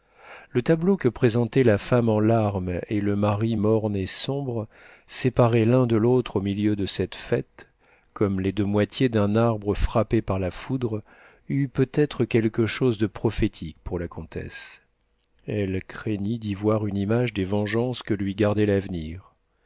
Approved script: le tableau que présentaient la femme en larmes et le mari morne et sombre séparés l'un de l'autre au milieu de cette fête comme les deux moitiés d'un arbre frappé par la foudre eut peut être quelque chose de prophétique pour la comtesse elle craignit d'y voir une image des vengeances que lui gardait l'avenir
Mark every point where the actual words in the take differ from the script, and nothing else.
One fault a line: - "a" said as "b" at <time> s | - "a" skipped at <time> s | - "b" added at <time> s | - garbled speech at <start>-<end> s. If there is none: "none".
none